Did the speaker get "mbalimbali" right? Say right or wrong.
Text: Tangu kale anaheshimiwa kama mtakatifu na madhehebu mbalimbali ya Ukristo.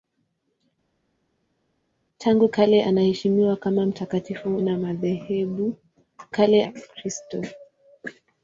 wrong